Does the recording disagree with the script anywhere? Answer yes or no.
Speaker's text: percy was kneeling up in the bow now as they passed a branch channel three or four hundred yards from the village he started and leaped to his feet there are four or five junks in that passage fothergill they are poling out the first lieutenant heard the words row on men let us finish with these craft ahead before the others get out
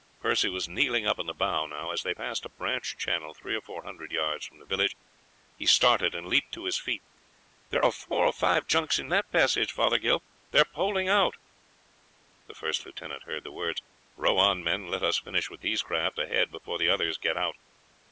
no